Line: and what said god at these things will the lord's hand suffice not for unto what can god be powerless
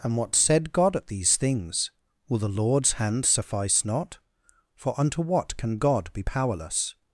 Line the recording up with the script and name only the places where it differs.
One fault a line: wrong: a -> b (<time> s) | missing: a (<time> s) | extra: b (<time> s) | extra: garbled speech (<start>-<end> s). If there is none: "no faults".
no faults